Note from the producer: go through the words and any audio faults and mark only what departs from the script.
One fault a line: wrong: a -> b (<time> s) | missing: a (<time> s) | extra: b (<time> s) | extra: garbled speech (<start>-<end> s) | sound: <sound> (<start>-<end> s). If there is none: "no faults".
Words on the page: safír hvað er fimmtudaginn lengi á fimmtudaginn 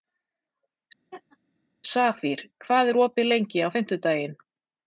sound: laugh (1.1-1.4 s)
wrong: fimmtudaginn -> opið (3.1 s)